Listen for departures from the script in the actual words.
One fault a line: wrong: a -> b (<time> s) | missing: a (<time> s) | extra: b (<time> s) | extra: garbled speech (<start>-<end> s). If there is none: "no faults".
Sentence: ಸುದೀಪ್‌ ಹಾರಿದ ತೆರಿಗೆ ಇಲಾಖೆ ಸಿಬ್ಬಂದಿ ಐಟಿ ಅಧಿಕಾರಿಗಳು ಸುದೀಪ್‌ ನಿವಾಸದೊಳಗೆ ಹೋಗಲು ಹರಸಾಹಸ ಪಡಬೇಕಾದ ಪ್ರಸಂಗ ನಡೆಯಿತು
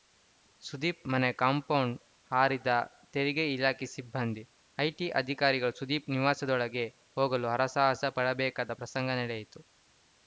extra: ಮನೆ ಕಾಂಪೌಂಡ್ (1.1 s)